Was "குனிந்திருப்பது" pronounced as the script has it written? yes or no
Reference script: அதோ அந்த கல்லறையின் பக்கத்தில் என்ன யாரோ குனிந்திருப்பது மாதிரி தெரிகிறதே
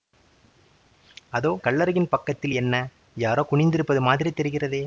yes